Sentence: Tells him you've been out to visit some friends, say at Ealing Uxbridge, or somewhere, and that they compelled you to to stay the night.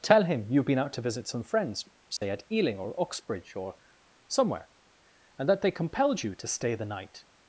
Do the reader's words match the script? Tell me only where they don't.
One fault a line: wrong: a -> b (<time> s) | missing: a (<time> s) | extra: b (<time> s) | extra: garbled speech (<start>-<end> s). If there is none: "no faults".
wrong: Tells -> Tell (0.0 s)
extra: or (2.8 s)
missing: to (6.5 s)